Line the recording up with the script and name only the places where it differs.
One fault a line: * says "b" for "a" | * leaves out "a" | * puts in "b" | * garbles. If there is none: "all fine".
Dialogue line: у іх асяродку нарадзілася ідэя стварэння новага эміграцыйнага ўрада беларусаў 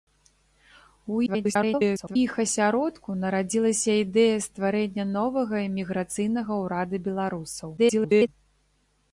* garbles
* garbles